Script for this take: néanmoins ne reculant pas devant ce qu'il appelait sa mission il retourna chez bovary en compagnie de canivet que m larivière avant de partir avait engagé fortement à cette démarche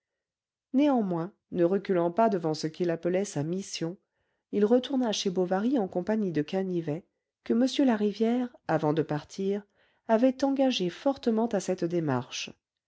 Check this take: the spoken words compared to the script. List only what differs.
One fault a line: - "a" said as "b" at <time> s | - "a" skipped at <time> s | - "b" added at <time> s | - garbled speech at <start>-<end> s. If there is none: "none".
none